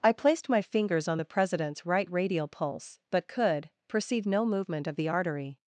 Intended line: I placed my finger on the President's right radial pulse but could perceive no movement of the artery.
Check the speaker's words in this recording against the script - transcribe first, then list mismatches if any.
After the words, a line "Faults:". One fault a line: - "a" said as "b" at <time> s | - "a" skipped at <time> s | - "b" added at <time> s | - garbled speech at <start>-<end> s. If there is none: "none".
I placed my fingers on the President's right radial pulse but could perceive no movement of the artery.
Faults:
- "finger" said as "fingers" at 0.6 s